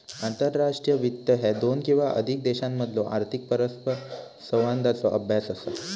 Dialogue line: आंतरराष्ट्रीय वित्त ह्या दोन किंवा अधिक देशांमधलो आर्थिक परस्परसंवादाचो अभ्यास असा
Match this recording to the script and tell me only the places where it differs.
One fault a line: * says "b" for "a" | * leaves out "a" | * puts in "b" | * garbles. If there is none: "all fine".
all fine